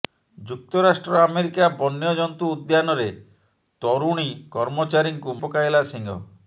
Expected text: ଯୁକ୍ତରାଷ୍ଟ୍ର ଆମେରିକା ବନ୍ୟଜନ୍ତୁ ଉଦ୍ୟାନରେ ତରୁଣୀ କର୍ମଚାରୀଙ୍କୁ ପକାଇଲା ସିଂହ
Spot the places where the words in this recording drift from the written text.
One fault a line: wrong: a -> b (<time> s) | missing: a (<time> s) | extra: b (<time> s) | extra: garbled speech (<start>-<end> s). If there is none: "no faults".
no faults